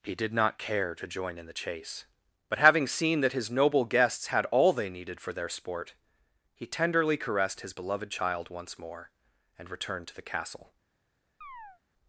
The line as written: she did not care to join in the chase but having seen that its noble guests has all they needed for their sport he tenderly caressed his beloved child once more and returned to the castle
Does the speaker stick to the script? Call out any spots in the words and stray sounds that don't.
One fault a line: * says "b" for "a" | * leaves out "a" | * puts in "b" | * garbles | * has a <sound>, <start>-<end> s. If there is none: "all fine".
* says "he" for "she"
* says "his" for "its"
* says "had" for "has"
* has a chirp, 11.4-11.8 s